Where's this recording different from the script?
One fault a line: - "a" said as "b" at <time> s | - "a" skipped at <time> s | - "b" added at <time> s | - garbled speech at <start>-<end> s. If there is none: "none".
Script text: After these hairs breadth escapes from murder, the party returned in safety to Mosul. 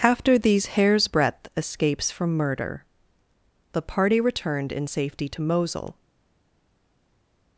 none